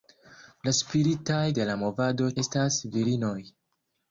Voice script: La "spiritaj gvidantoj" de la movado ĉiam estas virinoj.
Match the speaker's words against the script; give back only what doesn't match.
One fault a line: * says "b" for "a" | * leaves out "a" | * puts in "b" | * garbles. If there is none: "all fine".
* leaves out "gvidantoj"
* leaves out "ĉiam"